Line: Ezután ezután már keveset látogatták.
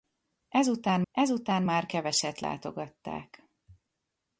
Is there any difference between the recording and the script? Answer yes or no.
no